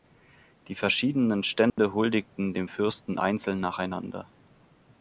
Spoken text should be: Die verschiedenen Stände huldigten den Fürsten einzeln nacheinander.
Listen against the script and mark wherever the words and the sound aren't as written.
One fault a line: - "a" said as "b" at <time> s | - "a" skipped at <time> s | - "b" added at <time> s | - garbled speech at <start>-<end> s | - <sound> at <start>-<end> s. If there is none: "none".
- dropout at 1.7-1.8 s
- "den" said as "dem" at 2.5 s